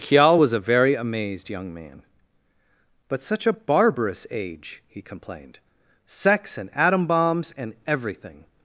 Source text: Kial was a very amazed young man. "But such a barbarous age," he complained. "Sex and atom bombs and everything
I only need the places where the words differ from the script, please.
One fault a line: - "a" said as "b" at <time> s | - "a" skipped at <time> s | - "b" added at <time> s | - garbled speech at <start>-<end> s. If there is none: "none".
none